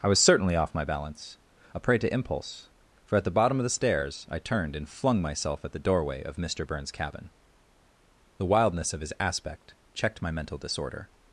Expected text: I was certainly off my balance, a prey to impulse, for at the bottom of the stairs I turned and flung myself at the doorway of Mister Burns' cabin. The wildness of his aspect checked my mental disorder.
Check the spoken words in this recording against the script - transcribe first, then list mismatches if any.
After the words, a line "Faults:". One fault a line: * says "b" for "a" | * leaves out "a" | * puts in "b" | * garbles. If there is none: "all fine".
I was certainly off my balance, a prey to impulse, for at the bottom of the stairs I turned and flung myself at the doorway of Mister Burns' cabin. The wildness of his aspect checked my mental disorder.
Faults:
all fine